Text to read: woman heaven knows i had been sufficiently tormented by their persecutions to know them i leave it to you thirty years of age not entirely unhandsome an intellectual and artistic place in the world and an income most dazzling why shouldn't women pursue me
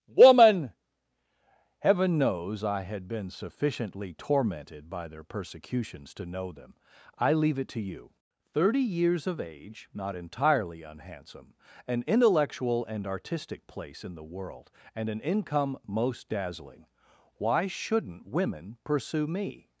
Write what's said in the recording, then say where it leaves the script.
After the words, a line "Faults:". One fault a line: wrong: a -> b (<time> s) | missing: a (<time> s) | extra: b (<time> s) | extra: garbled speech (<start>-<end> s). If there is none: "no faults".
woman heaven knows i had been sufficiently tormented by their persecutions to know them i leave it to you thirty years of age not entirely unhandsome an intellectual and artistic place in the world and an income most dazzling why shouldn't women pursue me
Faults:
no faults